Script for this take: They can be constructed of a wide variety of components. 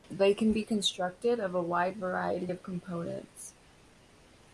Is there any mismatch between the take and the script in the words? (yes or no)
no